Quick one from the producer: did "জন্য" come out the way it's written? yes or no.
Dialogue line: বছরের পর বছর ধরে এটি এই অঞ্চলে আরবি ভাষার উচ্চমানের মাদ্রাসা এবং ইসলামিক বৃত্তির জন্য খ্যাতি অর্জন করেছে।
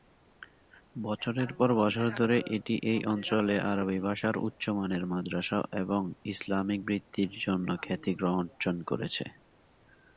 yes